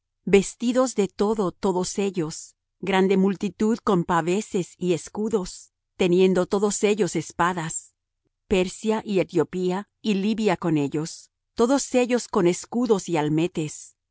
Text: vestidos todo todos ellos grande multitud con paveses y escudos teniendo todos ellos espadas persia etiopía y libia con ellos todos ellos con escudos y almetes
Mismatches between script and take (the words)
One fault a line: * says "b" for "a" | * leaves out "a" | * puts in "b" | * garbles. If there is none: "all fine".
* puts in "de"
* puts in "y"